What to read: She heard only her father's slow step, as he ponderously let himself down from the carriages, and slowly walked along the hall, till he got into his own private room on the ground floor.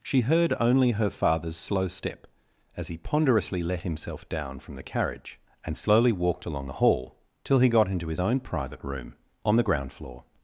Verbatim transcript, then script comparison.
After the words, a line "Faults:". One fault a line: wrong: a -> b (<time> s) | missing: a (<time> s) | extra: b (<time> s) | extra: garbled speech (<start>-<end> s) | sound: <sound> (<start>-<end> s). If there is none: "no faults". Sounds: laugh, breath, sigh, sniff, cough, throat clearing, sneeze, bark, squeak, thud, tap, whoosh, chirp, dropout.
She heard only her father's slow step, as he ponderously let himself down from the carriage, and slowly walked along the hall, till he got into his own private room on the ground floor.
Faults:
wrong: carriages -> carriage (4.8 s)